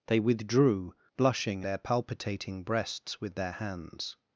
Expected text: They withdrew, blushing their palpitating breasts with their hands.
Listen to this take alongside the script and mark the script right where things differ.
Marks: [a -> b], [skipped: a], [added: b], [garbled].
They withdrew, blushing their palpitating breasts with their hands.